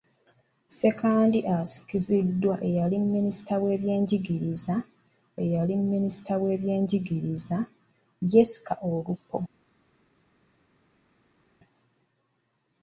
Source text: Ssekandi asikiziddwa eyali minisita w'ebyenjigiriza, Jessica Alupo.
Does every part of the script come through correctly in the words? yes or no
no